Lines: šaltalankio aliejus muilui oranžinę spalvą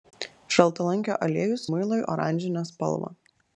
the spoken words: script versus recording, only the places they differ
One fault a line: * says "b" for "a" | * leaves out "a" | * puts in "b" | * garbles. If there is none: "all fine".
all fine